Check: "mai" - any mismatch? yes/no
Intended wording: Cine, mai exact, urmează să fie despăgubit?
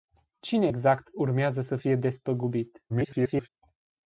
yes